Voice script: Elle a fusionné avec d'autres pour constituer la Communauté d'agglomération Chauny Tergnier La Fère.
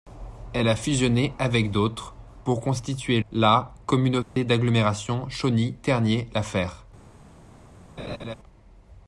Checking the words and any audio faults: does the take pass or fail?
fail